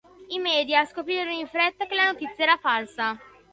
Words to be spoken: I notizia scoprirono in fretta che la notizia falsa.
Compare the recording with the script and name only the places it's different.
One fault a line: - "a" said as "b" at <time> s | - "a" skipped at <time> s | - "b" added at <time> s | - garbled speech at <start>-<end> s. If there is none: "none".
- "notizia" said as "media" at 0.4 s
- "era" added at 2.4 s